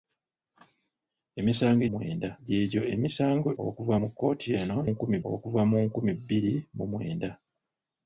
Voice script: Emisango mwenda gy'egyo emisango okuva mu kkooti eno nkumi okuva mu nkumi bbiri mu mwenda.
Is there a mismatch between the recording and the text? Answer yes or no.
no